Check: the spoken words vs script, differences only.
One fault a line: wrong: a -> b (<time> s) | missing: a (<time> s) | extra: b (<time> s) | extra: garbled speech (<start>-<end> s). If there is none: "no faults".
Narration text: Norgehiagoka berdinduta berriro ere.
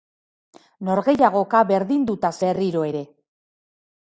no faults